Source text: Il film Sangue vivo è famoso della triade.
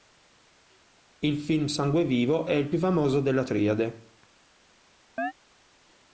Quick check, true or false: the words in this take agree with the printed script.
false